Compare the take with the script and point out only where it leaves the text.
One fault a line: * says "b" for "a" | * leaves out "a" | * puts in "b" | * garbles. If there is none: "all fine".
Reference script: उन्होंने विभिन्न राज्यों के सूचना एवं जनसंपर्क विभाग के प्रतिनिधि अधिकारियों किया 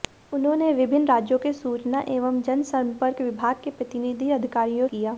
all fine